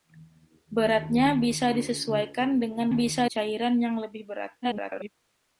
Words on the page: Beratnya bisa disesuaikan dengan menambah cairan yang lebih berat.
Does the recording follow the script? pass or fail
fail